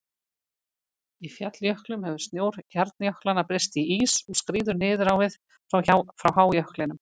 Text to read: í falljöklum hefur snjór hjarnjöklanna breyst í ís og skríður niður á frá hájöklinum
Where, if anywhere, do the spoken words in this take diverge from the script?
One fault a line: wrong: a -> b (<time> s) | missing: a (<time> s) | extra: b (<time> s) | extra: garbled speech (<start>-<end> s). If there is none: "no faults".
extra: við (5.3 s)